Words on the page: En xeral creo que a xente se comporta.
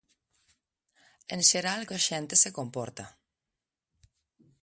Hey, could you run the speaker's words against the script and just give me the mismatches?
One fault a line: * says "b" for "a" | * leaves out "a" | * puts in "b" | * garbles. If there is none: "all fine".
* leaves out "creo"